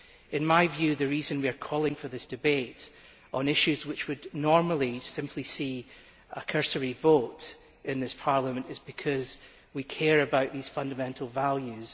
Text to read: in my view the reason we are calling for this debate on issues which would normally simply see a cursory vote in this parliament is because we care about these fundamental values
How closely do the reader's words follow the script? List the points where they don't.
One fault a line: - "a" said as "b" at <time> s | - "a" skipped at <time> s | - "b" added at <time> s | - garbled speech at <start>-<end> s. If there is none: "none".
none